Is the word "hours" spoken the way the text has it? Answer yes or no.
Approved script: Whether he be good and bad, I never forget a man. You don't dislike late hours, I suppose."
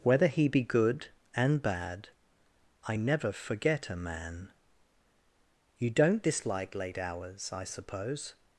yes